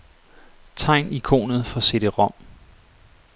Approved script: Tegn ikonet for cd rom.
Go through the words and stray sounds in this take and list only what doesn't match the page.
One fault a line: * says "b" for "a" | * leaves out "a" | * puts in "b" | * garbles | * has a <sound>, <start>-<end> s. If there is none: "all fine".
all fine